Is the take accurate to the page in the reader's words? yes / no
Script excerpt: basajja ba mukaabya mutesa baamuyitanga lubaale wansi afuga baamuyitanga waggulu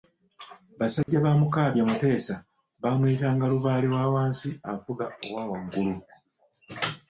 no